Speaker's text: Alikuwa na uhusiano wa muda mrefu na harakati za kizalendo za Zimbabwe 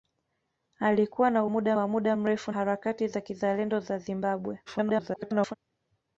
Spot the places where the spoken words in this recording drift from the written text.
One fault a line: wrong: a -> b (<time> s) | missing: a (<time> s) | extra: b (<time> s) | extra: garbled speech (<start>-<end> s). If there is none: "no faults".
wrong: uhusiano -> muda (1.5 s)
missing: na (2.5 s)
extra: garbled speech (4.7-5.6 s)